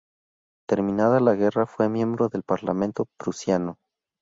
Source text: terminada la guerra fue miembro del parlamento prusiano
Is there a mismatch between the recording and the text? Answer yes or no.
no